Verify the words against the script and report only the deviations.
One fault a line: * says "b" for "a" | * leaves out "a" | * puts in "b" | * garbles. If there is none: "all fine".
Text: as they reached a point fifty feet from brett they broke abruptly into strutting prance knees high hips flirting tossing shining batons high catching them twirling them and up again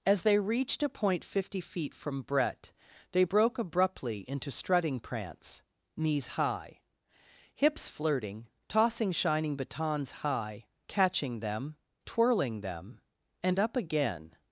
all fine